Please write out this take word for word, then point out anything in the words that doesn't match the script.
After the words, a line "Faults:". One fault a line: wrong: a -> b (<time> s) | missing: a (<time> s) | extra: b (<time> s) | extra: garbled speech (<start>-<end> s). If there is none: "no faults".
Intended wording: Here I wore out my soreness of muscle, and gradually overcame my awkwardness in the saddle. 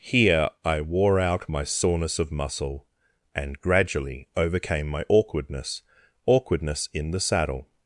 Here I wore out my soreness of muscle, and gradually overcame my awkwardness awkwardness in the saddle.
Faults:
extra: awkwardness (6.3 s)